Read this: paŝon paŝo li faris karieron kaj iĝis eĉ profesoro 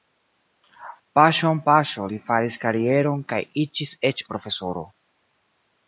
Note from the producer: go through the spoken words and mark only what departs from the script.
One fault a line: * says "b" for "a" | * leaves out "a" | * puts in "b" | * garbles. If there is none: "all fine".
all fine